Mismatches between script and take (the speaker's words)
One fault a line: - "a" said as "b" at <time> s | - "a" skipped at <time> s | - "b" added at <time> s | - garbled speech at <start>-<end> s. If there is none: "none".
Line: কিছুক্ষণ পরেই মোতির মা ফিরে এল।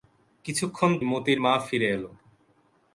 - "পরেই" skipped at 0.9 s